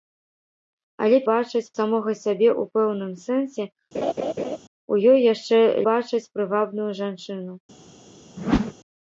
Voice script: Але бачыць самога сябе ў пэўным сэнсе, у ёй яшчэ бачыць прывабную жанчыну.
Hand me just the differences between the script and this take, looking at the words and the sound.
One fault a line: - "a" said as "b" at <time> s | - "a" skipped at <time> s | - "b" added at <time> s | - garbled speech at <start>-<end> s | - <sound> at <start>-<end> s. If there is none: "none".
- laugh at 3.9-4.6 s
- whoosh at 8.4-8.7 s